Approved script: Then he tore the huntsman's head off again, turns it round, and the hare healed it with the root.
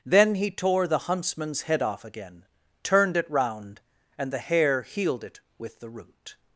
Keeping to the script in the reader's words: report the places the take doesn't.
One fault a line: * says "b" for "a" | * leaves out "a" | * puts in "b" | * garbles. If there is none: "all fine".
* says "turned" for "turns"